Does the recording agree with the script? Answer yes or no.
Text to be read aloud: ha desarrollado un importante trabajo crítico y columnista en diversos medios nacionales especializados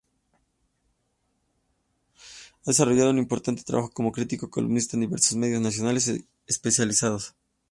no